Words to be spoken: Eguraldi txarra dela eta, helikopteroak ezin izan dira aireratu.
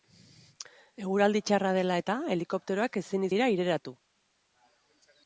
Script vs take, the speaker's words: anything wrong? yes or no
yes